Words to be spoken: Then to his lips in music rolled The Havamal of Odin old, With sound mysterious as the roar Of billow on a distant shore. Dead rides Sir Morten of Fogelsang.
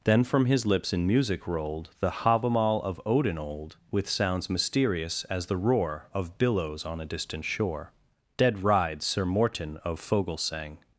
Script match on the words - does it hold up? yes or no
no